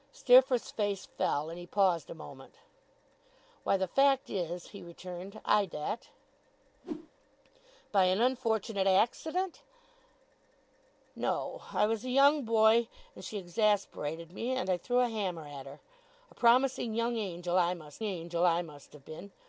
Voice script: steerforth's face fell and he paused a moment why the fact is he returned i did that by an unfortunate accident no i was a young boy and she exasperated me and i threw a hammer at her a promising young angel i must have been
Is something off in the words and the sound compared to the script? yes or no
yes